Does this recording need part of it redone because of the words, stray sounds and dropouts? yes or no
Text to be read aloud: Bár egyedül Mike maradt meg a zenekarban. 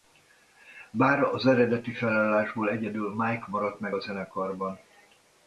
yes